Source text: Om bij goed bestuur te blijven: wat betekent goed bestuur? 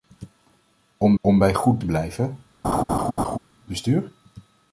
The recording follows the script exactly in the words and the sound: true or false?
false